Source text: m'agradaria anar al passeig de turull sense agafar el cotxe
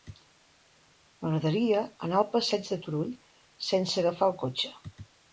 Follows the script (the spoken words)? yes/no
yes